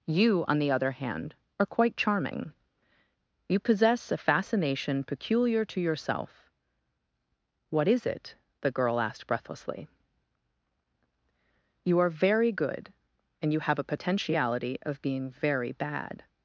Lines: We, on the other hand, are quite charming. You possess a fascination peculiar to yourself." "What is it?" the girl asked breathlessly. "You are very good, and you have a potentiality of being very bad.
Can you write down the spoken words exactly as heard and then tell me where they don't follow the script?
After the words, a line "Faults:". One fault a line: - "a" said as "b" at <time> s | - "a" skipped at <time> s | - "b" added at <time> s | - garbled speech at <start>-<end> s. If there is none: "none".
You, on the other hand, are quite charming. You possess a fascination peculiar to yourself." "What is it?" the girl asked breathlessly. "You are very good, and you have a potentiality of being very bad.
Faults:
- "We" said as "You" at 0.1 s